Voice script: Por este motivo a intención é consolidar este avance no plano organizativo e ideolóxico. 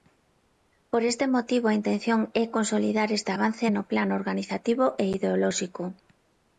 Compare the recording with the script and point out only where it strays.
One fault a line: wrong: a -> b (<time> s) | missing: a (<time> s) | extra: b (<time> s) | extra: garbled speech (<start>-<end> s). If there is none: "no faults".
no faults